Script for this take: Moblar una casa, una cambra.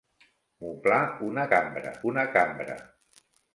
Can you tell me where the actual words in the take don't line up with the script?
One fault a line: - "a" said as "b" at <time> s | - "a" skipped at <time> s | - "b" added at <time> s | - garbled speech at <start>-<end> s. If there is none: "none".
- "casa" said as "cambra" at 1.5 s